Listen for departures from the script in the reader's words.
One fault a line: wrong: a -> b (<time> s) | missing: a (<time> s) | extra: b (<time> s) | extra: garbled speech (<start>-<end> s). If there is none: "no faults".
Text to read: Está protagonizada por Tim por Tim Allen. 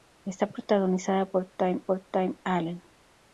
no faults